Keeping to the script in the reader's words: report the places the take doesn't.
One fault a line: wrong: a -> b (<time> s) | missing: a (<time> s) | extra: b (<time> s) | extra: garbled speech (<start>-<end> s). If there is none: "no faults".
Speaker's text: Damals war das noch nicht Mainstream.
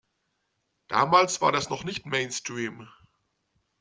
no faults